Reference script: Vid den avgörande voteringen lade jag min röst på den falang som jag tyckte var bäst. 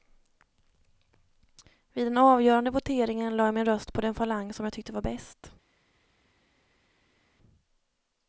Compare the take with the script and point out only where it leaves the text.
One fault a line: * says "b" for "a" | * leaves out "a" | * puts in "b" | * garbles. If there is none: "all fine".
all fine